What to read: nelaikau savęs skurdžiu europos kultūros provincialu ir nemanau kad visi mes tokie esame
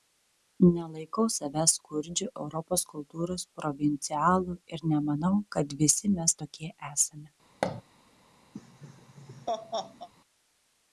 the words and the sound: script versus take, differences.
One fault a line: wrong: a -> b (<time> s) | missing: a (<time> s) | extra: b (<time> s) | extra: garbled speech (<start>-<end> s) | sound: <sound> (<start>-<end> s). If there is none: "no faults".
sound: thud (7.6-7.8 s)
sound: laugh (8.5-10.1 s)